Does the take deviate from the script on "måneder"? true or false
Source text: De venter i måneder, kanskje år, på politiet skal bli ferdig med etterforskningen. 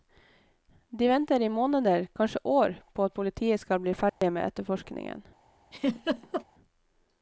false